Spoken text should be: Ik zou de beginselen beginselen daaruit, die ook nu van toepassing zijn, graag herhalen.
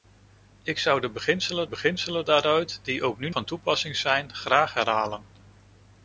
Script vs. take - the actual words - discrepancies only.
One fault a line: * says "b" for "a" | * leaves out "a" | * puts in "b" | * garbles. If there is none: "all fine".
all fine